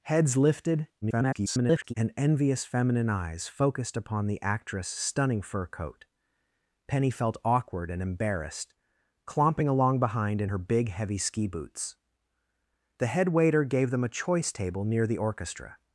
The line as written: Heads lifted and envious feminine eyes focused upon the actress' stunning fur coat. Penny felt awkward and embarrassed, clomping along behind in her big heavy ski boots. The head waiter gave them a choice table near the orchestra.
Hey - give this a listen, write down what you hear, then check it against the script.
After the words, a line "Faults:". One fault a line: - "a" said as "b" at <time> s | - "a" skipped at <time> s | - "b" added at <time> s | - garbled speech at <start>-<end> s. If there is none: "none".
Heads lifted [garbled] and envious feminine eyes focused upon the actress' stunning fur coat. Penny felt awkward and embarrassed, clomping along behind in her big heavy ski boots. The head waiter gave them a choice table near the orchestra.
Faults:
- garbled speech at 1.0-1.9 s